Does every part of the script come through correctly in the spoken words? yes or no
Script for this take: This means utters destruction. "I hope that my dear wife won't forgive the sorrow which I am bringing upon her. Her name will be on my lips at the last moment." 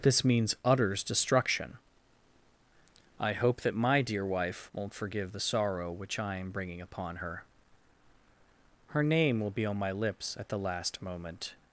yes